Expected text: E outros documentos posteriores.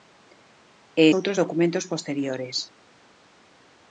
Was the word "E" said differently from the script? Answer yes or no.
no